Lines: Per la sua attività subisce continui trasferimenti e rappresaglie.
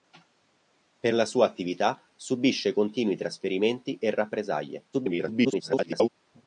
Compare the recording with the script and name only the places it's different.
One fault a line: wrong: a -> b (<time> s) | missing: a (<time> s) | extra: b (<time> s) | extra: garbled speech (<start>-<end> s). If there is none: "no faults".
extra: garbled speech (4.9-6.1 s)